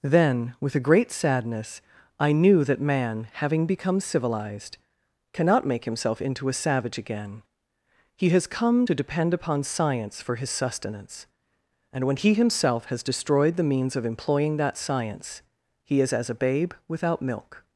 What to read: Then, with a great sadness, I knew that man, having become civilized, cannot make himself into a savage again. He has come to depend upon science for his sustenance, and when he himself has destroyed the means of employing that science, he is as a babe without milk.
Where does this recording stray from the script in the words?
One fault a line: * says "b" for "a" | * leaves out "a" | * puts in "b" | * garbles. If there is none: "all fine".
all fine